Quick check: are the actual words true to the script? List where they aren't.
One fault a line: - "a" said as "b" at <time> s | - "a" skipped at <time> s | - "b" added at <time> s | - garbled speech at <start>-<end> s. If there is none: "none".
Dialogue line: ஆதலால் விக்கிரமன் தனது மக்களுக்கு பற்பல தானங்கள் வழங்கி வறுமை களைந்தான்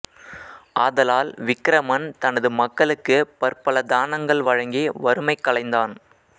none